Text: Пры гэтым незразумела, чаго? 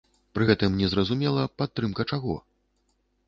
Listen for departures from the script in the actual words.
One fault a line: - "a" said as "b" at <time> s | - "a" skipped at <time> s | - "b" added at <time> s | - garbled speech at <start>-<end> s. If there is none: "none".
- "падтрымка" added at 1.6 s